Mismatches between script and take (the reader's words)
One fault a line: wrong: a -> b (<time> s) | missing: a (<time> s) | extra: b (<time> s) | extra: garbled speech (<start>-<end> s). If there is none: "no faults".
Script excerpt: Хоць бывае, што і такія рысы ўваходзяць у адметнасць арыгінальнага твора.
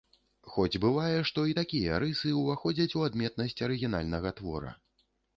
no faults